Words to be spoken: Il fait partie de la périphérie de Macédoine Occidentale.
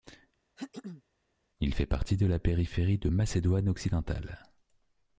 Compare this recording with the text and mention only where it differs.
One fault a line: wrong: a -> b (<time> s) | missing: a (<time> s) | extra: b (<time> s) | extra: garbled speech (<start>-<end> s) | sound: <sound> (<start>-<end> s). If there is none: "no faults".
sound: throat clearing (0.6-1.0 s)